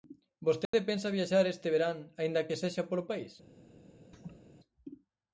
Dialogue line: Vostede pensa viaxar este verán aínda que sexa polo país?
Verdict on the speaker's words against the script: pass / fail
pass